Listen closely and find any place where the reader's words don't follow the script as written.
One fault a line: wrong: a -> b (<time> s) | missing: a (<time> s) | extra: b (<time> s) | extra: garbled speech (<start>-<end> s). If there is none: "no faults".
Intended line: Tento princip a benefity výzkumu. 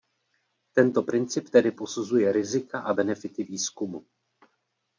extra: tedy posuzuje rizika (1.5 s)